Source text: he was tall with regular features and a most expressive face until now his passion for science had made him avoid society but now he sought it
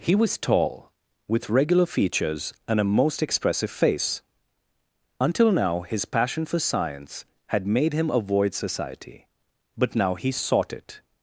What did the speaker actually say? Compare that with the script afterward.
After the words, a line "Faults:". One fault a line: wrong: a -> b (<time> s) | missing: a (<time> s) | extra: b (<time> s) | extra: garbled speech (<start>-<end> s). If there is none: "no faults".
he was tall with regular features and a most expressive face until now his passion for science had made him avoid society but now he sought it
Faults:
no faults